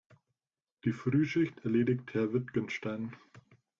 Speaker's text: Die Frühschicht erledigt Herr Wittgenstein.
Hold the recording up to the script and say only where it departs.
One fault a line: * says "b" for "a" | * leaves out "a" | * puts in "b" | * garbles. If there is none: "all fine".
all fine